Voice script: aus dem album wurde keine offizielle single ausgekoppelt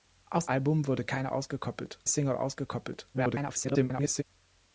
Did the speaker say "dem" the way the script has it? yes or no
no